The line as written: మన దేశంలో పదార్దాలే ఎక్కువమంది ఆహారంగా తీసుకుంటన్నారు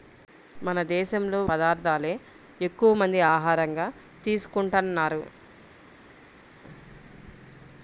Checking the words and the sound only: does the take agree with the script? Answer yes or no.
yes